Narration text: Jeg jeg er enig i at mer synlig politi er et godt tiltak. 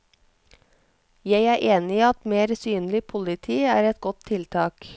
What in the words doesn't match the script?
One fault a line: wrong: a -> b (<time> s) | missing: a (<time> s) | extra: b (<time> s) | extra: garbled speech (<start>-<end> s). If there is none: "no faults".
missing: jeg (1.4 s)